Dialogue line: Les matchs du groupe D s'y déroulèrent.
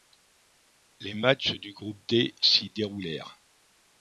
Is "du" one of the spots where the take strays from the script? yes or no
no